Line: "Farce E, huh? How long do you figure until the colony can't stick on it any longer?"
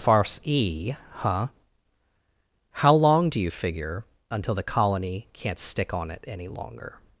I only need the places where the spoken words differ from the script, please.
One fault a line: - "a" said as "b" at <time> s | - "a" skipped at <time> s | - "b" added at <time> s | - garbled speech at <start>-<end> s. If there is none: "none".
none